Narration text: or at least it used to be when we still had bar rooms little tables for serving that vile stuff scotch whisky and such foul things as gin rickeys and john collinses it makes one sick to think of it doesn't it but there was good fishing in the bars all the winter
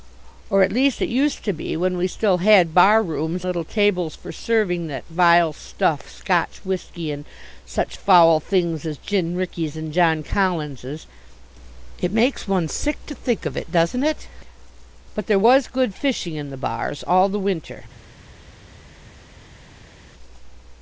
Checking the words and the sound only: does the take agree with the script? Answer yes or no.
yes